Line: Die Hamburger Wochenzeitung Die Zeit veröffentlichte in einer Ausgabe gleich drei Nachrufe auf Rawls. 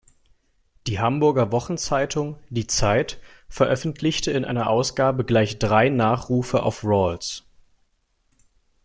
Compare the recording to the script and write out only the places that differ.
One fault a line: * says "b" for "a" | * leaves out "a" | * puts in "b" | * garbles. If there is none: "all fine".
all fine